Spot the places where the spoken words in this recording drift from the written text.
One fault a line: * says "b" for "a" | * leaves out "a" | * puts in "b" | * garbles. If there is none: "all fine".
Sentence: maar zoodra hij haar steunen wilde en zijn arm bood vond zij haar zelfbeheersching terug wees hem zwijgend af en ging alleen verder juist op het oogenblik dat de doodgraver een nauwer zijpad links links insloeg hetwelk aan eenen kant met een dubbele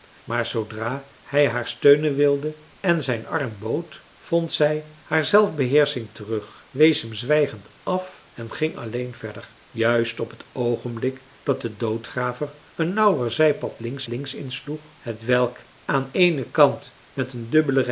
all fine